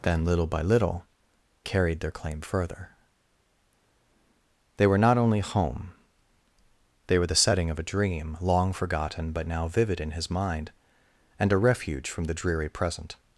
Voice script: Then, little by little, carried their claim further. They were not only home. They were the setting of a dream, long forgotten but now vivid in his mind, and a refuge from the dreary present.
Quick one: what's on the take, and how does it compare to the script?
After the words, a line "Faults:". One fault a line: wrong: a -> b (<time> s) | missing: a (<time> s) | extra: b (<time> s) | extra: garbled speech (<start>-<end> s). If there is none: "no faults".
Then, little by little, carried their claim further. They were not only home. They were the setting of a dream, long forgotten but now vivid in his mind, and a refuge from the dreary present.
Faults:
no faults